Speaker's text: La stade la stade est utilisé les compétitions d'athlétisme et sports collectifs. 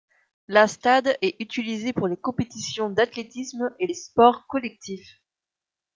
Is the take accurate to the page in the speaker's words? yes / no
no